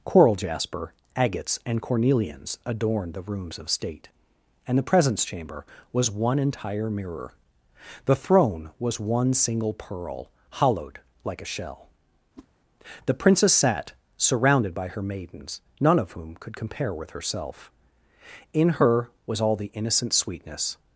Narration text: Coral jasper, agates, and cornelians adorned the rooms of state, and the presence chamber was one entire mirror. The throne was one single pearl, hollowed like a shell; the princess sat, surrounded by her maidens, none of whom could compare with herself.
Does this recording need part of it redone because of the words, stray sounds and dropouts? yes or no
yes